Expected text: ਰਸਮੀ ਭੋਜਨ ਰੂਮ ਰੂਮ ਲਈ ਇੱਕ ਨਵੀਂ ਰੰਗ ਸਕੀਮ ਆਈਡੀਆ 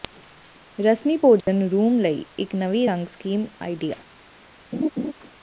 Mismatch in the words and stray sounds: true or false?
true